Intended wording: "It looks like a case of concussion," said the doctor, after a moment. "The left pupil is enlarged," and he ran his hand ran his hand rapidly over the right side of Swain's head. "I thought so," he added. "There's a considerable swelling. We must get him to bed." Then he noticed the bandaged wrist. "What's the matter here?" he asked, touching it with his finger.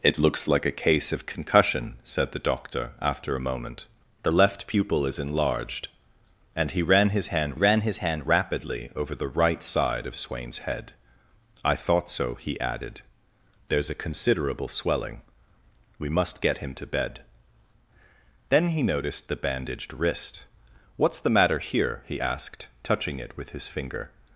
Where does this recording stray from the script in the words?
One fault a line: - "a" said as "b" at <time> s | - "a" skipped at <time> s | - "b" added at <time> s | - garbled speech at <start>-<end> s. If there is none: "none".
none